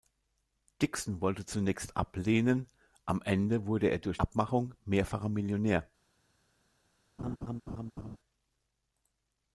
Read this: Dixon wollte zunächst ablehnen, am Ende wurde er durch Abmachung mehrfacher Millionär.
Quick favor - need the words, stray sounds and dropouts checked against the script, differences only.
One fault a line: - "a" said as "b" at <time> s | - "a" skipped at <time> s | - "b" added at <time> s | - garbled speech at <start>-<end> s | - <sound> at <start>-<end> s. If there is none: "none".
- laugh at 7.2-8.2 s